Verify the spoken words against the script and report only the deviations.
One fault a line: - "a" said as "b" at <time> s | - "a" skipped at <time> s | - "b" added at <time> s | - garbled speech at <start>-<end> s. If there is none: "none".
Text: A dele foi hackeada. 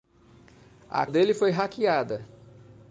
none